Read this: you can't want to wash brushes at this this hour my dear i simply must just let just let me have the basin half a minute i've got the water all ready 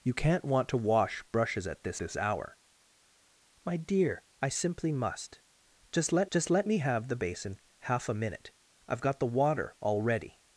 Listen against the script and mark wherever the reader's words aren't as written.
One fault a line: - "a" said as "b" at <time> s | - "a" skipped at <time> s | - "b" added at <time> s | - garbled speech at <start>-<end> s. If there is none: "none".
none